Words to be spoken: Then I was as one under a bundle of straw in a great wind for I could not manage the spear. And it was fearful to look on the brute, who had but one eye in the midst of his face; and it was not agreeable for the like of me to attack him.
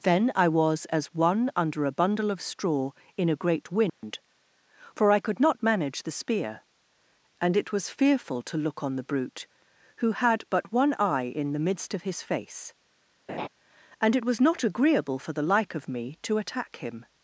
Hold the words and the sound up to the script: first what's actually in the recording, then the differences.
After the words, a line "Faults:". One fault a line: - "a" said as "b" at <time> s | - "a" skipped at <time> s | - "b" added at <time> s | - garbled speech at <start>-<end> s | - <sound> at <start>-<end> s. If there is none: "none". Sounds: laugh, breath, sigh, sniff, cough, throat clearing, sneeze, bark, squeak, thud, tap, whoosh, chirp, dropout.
Then I was as one under a bundle of straw in a great wind for I could not manage the spear. And it was fearful to look on the brute, who had but one eye in the midst of his face; and it was not agreeable for the like of me to attack him.
Faults:
- dropout at 3.9-4.0 s
- laugh at 13.3-13.5 s